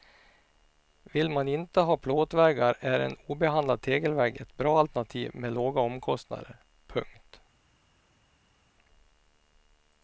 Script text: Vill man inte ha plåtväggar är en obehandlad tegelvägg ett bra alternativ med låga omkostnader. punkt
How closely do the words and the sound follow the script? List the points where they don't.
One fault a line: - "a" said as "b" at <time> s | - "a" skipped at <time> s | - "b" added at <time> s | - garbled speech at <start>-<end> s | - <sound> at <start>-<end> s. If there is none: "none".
none